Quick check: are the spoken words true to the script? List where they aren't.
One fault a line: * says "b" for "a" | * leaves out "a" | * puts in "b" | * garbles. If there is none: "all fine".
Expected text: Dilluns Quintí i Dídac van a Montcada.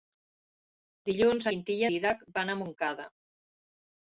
all fine